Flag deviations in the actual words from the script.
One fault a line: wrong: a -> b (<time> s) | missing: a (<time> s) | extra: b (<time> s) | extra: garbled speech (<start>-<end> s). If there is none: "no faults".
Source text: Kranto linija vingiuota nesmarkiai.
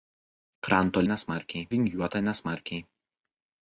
wrong: linija -> nesmarkiai (1.1 s)